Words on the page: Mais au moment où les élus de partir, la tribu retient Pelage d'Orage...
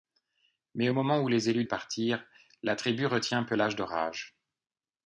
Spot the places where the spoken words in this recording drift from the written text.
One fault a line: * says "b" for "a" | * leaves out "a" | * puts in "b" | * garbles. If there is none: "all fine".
all fine